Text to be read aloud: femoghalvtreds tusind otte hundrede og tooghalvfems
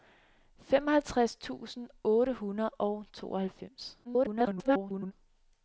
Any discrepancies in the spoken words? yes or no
yes